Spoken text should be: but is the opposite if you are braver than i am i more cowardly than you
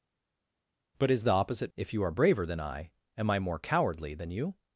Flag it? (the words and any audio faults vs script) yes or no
no